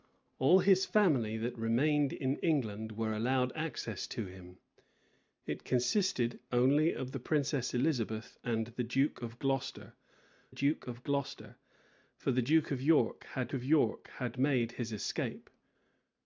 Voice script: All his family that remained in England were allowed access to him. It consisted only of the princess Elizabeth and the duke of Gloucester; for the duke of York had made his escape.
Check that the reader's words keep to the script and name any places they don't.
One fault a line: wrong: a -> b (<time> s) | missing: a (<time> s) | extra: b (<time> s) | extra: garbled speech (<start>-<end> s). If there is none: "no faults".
extra: duke of Gloucester (10.5 s)
extra: of York had (13.5 s)